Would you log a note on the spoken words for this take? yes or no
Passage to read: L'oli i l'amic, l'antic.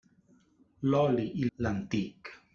yes